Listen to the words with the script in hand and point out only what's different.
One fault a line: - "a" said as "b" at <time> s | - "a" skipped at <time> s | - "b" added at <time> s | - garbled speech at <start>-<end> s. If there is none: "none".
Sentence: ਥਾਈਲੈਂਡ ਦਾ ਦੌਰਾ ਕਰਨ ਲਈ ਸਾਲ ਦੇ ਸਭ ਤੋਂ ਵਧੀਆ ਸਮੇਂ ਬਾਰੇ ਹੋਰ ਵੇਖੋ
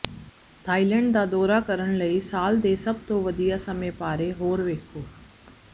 none